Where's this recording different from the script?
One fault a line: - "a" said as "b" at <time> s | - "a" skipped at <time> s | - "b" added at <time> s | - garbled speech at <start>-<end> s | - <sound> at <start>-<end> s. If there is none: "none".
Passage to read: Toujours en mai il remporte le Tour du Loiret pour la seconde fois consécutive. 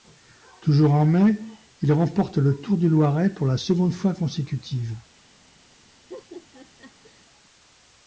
- laugh at 6.1-7.2 s